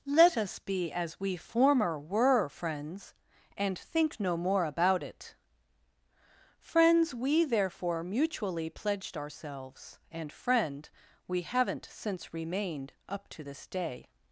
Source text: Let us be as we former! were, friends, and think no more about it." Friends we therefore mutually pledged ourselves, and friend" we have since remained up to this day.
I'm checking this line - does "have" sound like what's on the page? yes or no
no